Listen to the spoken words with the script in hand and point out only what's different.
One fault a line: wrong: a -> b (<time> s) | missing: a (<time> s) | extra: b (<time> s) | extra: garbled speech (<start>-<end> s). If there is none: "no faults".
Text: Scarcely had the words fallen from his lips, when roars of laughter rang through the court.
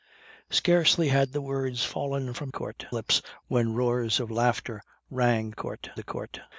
wrong: his -> court (2.5 s)
wrong: through -> court (5.5 s)